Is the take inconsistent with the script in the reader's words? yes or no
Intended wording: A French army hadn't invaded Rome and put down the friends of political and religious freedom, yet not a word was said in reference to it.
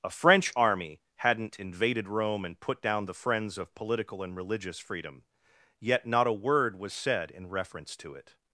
no